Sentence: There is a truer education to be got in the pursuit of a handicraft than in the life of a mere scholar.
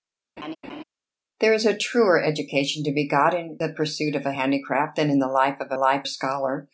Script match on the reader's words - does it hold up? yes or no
no